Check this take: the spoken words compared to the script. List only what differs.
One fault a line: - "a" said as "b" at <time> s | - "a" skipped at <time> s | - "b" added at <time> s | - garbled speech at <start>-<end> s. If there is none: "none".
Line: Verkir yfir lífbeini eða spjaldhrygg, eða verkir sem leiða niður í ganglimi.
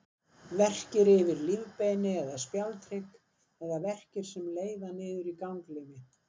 none